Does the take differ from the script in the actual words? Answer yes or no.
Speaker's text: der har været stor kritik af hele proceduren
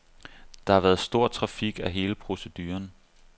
no